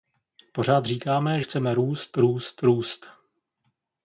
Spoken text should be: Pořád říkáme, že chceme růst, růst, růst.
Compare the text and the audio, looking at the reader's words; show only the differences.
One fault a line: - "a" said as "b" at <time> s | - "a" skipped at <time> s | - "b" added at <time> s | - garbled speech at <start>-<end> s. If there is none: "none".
- "že" skipped at 1.4 s